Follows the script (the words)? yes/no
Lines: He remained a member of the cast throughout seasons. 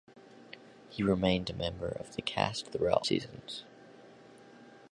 yes